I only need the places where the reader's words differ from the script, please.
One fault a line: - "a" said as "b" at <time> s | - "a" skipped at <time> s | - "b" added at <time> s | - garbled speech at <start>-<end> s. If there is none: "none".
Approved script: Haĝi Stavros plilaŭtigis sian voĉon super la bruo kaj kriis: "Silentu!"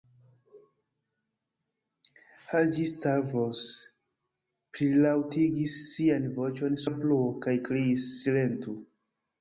- "super" skipped at 6.8 s